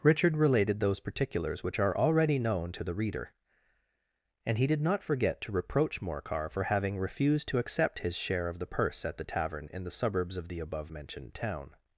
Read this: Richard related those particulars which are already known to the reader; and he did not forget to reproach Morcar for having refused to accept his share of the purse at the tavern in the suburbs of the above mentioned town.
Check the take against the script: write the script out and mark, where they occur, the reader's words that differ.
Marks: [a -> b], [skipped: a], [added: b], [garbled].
Richard related those particulars which are already known to the reader; and he did not forget to reproach Morcar for having refused to accept his share of the purse at the tavern in the suburbs of the above mentioned town.